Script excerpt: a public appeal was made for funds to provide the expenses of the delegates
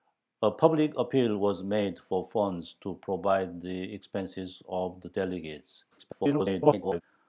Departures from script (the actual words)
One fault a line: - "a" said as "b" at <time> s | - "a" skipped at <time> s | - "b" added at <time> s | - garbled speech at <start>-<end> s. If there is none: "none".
- garbled speech at 5.9-7.0 s